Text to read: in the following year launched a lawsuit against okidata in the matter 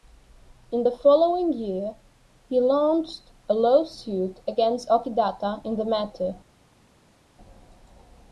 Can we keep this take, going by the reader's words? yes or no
no